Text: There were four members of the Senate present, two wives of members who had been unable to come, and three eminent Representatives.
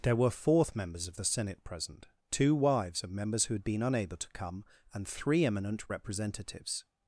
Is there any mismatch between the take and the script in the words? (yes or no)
yes